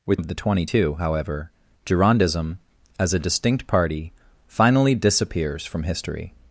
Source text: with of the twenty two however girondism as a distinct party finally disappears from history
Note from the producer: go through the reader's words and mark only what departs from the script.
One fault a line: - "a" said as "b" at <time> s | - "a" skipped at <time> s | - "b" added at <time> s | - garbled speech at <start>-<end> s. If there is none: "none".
none